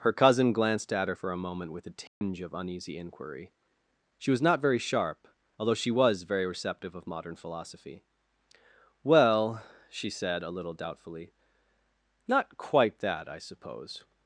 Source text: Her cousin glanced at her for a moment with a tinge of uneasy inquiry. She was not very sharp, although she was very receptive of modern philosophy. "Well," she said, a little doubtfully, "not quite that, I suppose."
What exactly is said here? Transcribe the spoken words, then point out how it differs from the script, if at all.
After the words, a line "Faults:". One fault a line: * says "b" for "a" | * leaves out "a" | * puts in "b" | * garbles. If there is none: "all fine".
Her cousin glanced at her for a moment with a tinge of uneasy inquiry. She was not very sharp, although she was very receptive of modern philosophy. "Well," she said, a little doubtfully, "not quite that, I suppose."
Faults:
all fine